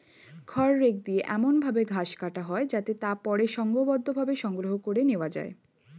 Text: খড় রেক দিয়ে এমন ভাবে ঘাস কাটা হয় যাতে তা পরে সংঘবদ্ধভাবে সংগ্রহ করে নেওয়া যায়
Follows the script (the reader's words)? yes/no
yes